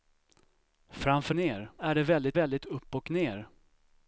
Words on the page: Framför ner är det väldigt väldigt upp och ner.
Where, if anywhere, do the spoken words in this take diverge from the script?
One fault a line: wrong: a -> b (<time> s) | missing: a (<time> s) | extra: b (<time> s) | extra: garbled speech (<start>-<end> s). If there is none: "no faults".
no faults